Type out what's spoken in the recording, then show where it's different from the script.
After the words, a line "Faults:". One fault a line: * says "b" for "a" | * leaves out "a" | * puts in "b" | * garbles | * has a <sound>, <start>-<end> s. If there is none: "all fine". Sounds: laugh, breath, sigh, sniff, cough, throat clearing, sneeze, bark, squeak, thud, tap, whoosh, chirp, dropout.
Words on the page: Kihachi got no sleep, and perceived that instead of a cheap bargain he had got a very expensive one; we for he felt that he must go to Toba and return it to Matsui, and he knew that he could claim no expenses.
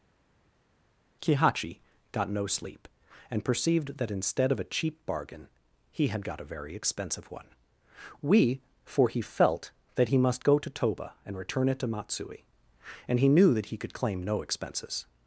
Kihachi got no sleep, and perceived that instead of a cheap bargain he had got a very expensive one; we for he felt that he must go to Toba and return it to Matsui, and he knew that he could claim no expenses.
Faults:
all fine